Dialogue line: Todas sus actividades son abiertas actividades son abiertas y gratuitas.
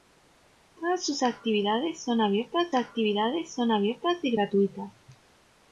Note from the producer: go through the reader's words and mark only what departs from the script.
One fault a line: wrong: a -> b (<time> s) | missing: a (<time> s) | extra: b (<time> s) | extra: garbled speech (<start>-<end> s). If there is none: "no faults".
no faults